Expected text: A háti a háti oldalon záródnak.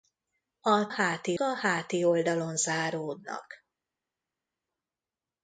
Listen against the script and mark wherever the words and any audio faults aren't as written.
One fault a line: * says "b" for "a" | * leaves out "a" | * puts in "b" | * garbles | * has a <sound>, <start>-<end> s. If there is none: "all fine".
all fine